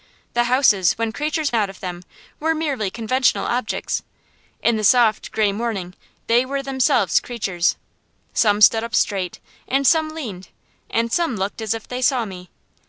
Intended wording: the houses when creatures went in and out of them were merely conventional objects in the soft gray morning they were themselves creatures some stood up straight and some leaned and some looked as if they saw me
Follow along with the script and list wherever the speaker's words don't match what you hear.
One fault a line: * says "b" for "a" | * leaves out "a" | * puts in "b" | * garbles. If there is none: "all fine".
* leaves out "went in and"